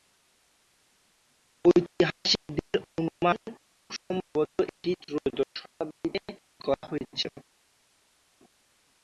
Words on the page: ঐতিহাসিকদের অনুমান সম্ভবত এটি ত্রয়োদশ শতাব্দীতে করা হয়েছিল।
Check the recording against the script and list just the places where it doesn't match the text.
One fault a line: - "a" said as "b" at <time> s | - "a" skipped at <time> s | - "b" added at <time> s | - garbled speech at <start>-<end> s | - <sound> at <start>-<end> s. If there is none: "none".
none